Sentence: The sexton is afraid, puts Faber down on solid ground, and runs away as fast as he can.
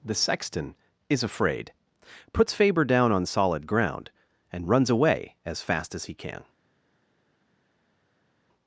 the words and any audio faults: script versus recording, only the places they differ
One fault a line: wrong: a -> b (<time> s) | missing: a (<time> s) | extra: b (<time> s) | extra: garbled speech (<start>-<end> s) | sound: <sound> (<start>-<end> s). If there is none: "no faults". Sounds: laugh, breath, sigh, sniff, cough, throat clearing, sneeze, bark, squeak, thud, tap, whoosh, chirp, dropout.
no faults